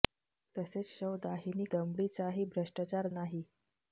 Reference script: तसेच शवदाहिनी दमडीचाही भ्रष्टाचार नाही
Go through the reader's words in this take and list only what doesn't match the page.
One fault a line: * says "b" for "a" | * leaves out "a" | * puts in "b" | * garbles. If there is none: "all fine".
all fine